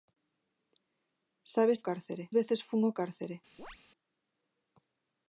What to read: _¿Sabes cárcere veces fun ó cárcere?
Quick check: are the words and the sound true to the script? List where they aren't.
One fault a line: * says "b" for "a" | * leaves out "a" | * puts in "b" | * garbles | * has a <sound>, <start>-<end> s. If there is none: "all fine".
* has a chirp, 3.6-3.8 s